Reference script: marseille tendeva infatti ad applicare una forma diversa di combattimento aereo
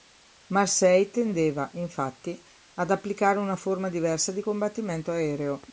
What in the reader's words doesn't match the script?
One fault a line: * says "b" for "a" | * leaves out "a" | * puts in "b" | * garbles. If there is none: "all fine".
all fine